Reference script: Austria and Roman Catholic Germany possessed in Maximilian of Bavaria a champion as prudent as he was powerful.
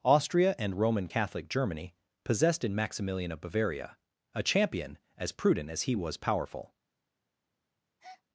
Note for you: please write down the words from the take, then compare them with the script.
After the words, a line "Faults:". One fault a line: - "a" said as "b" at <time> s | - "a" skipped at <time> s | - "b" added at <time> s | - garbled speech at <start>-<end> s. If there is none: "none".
Austria and Roman Catholic Germany possessed in Maximilian of Bavaria a champion as prudent as he was powerful.
Faults:
none